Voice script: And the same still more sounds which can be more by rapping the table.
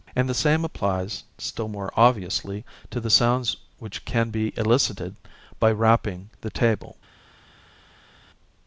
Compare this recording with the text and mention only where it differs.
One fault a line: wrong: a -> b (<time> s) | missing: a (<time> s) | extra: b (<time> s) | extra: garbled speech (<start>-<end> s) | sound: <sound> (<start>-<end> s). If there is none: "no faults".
extra: applies (0.7 s)
extra: obviously to the (1.9 s)
wrong: more -> elicited (4.6 s)